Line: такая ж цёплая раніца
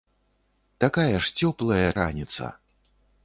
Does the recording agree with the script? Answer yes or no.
yes